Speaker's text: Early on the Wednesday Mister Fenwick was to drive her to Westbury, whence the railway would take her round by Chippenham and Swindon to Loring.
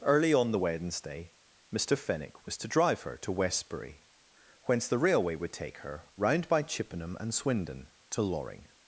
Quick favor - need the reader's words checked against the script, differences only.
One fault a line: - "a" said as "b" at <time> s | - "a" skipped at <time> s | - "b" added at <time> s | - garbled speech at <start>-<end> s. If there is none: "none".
none